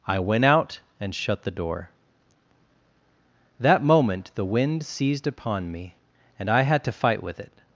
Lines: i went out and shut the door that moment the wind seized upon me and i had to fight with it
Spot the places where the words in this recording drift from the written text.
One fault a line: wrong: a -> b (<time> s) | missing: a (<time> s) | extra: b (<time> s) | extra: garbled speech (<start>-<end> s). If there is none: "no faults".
no faults